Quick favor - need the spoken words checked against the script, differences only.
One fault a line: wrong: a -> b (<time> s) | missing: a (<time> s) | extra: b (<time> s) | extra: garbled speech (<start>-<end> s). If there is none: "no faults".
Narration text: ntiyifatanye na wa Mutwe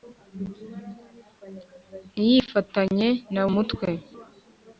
missing: wa (3.4 s)